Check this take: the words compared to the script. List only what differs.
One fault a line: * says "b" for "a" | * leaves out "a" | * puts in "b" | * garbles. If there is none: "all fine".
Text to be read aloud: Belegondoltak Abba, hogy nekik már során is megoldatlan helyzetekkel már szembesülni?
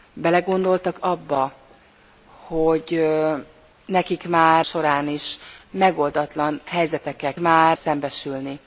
all fine